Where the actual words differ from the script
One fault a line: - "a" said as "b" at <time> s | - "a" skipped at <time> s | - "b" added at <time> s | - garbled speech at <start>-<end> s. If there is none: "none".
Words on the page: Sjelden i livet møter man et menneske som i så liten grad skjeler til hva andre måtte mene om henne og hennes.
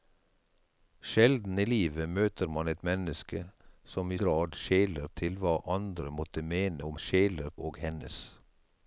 - "så liten" skipped at 4.2 s
- "henne" said as "skjeler" at 7.0 s